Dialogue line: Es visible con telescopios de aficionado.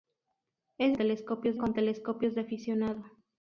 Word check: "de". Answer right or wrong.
right